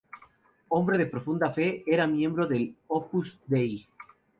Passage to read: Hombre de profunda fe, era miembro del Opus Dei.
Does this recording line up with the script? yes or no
yes